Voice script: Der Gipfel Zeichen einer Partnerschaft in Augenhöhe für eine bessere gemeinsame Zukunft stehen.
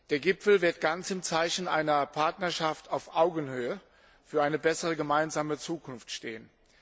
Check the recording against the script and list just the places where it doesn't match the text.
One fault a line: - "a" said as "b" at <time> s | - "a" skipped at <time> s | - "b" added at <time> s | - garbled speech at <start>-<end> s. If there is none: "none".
- "wird ganz im" added at 0.6 s
- "in" said as "auf" at 2.9 s